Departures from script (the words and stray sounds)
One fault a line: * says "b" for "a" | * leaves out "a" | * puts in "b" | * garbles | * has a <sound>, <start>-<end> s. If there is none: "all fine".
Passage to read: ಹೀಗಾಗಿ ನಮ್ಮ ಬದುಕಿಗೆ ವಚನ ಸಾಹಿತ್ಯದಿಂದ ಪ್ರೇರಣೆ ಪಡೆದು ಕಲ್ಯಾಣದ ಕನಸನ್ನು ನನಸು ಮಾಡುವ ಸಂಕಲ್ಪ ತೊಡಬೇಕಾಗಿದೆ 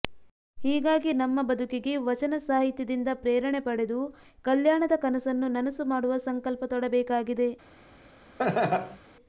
* has a laugh, 8.4-9.0 s